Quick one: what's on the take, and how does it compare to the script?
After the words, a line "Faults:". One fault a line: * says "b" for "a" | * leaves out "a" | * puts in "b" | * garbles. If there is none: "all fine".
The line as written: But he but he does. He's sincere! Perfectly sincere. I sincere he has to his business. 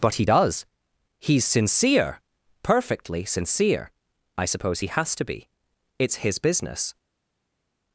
But he does. He's sincere! Perfectly sincere. I suppose he has to be. It's his business.
Faults:
* leaves out "but he"
* says "suppose" for "sincere"
* puts in "be It's"